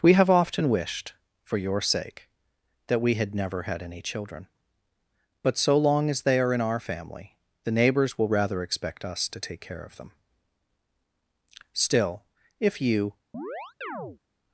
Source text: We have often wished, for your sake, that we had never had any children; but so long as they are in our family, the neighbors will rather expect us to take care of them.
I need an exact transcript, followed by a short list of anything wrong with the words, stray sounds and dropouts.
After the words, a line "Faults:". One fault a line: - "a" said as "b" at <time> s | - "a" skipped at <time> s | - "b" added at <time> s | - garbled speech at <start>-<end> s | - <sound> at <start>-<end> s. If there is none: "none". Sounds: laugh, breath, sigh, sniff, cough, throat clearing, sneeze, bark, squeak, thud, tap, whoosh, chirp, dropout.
We have often wished, for your sake, that we had never had any children; but so long as they are in our family, the neighbors will rather expect us to take care of them. Still, if you
Faults:
- "Still if you" added at 11.7 s
- chirp at 13.3-14.2 s